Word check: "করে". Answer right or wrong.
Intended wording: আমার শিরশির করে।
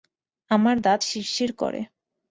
right